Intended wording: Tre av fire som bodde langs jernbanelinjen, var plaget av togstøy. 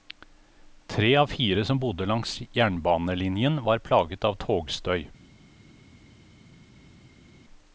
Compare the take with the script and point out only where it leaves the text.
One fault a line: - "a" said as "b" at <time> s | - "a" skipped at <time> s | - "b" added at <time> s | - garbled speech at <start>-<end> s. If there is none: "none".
none